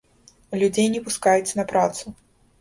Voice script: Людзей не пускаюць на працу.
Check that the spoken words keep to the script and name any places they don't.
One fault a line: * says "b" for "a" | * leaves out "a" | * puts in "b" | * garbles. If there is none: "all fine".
all fine